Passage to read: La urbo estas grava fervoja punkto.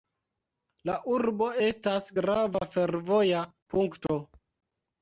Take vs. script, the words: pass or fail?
pass